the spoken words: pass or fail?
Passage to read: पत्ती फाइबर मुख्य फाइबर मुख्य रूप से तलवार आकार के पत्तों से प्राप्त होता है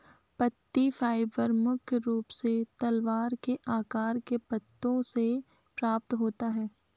fail